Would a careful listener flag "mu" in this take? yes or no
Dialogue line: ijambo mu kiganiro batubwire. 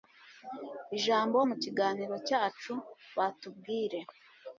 no